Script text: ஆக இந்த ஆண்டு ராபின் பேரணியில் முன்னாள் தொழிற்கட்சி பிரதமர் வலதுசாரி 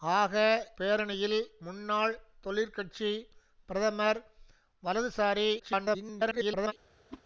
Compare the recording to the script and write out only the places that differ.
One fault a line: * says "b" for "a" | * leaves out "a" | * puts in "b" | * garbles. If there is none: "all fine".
* leaves out "இந்த ஆண்டு ராபின்"
* garbles